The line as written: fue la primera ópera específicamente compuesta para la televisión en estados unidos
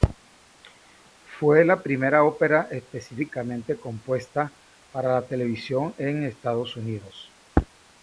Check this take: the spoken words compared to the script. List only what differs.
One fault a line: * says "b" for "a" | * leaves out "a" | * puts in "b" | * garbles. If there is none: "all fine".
all fine